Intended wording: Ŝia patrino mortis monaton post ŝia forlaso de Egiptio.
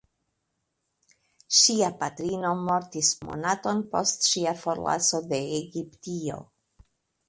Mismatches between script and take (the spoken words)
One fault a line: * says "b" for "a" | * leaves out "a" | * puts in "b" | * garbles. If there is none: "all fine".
all fine